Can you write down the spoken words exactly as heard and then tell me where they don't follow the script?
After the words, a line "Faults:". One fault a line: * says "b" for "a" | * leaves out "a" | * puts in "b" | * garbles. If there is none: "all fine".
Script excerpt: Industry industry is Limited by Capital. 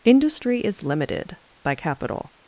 Industry is Limited by Capital.
Faults:
* leaves out "industry"